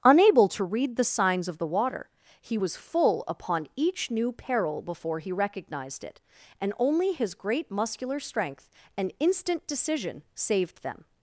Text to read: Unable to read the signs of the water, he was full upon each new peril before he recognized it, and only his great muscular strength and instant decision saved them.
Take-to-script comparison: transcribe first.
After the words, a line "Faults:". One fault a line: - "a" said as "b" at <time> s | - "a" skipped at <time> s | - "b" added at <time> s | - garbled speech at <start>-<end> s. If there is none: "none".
Unable to read the signs of the water, he was full upon each new peril before he recognized it, and only his great muscular strength and instant decision saved them.
Faults:
none